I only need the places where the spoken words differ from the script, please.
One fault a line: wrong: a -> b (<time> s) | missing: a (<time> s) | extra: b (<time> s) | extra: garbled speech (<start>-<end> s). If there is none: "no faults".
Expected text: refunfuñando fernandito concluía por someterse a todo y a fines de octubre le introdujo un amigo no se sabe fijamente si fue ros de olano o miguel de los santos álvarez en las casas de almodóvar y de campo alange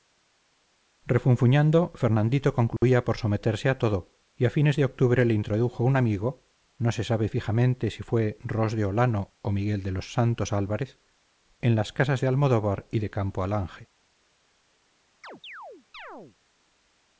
no faults